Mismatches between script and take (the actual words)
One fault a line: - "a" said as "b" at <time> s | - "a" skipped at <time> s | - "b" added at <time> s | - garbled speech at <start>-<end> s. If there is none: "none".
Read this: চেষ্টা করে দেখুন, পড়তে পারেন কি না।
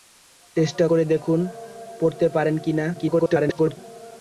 - garbled speech at 2.9-3.8 s